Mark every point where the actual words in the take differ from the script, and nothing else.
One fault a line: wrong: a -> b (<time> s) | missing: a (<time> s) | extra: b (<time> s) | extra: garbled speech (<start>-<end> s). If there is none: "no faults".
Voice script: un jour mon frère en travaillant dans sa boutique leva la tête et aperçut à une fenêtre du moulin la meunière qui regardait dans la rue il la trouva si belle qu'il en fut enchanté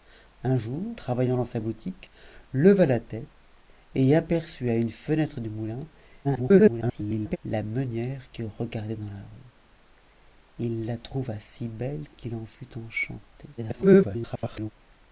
missing: mon frère en (1.0 s)
extra: garbled speech (6.2-7.4 s)
extra: garbled speech (13.6-14.7 s)